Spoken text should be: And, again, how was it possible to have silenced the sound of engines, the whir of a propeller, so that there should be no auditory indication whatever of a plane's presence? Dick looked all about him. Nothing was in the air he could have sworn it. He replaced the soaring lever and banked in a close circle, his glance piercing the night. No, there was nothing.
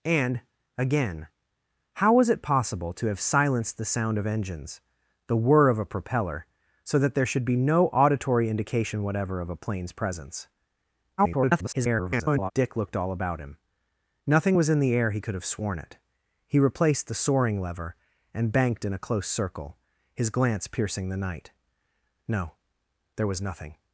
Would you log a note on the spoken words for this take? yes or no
yes